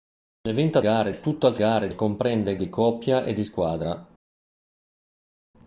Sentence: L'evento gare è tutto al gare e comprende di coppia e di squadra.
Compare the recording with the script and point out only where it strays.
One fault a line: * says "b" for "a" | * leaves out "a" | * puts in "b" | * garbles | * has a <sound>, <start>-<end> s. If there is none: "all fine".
all fine